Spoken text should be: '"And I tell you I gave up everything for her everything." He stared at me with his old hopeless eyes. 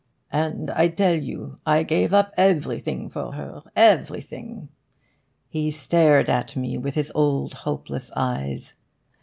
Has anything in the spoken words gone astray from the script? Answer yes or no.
no